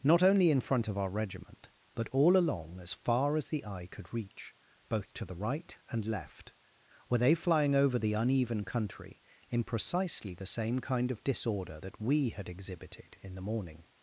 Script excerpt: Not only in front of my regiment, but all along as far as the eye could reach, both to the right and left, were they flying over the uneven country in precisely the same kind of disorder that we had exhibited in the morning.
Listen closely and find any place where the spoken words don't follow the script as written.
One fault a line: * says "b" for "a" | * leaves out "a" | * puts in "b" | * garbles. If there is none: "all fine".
* says "our" for "my"